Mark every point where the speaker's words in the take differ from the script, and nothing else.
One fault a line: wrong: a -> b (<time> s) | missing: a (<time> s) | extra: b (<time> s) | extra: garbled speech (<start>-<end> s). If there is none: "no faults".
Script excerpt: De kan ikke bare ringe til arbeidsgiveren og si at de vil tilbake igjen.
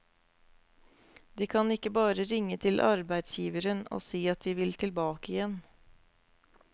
no faults